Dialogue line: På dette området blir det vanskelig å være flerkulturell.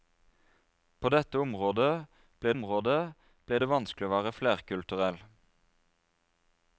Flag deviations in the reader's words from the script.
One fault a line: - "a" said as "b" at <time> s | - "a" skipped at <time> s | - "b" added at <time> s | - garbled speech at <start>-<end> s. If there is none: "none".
- "området blir" added at 2.5 s